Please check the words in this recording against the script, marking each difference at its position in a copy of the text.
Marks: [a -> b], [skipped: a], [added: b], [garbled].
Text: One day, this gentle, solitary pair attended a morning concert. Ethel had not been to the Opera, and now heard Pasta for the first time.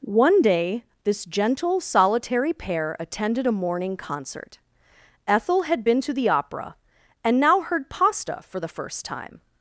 One day, this gentle, solitary pair attended a morning concert. Ethel had [skipped: not] been to the Opera, and now heard Pasta for the first time.